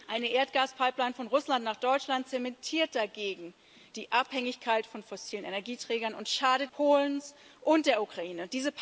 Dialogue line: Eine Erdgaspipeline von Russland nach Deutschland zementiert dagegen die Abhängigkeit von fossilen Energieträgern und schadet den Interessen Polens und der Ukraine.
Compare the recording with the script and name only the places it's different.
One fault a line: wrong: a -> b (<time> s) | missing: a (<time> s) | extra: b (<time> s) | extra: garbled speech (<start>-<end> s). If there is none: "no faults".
missing: den Interessen (6.7 s)